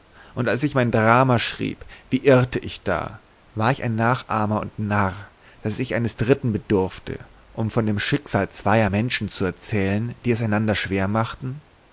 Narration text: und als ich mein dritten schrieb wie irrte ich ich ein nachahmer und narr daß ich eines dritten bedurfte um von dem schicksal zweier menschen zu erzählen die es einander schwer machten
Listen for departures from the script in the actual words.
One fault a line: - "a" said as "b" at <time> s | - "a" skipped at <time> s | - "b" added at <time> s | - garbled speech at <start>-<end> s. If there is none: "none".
- "dritten" said as "drama" at 0.9 s
- "da war" added at 2.8 s